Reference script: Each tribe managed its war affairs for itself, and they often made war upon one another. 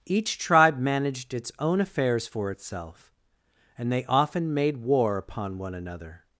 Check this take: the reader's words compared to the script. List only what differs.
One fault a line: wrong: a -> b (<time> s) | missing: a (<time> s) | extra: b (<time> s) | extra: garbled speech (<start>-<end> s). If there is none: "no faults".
wrong: war -> own (1.6 s)